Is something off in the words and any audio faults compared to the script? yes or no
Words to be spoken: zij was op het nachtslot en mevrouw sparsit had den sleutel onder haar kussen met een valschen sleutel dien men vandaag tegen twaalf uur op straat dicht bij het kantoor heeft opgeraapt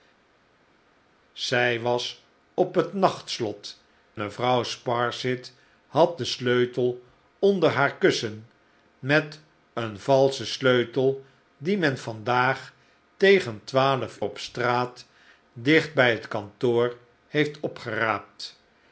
yes